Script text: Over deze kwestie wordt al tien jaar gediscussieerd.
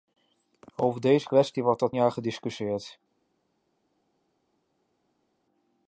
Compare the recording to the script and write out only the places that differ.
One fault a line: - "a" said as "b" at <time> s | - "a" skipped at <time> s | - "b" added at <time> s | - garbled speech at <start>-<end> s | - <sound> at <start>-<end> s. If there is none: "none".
- "tien" skipped at 1.9 s